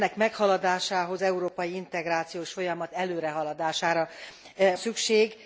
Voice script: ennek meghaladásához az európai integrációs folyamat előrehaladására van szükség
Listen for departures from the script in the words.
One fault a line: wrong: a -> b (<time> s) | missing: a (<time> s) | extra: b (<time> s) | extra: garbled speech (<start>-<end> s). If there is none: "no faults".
missing: az (1.2 s)
missing: van (4.1 s)